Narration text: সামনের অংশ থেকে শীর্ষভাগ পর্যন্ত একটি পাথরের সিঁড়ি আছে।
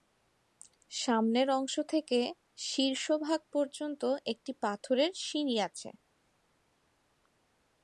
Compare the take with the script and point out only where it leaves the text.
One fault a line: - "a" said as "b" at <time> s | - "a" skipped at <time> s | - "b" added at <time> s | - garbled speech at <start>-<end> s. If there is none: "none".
none